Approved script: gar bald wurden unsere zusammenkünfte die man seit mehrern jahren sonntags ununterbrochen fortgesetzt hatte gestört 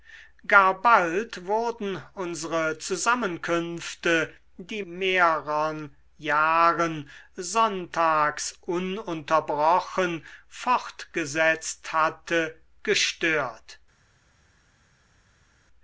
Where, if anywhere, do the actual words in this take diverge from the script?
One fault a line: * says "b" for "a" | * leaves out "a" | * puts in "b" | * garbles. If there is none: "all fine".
* leaves out "man seit"